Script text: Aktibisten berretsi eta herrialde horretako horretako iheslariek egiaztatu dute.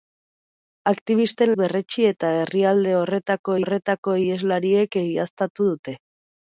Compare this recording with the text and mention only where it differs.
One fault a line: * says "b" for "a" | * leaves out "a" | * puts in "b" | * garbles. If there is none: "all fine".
all fine